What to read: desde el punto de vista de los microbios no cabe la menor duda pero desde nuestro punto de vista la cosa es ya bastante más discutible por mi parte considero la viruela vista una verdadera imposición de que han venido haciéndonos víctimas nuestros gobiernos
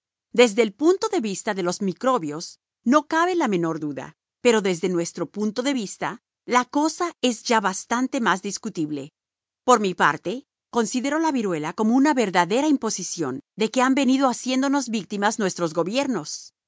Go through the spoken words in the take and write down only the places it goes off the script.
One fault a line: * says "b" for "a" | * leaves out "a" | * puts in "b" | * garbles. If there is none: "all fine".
* says "como" for "vista"